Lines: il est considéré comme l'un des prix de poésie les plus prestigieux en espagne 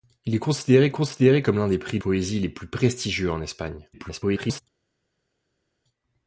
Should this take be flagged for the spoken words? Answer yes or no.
yes